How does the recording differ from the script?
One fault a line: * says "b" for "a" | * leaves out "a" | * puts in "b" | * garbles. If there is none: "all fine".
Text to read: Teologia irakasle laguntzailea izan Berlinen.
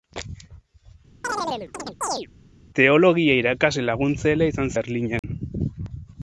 all fine